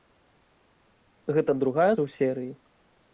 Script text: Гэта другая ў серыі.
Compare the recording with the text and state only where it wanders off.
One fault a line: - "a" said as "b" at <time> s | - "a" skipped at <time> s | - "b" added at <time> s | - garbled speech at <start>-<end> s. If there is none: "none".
none